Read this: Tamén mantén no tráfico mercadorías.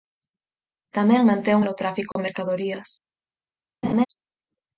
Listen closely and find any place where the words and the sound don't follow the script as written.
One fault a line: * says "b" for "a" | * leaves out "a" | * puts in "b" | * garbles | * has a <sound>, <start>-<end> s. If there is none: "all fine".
* has a dropout, 2.1-2.2 s
* has a laugh, 3.8-4.1 s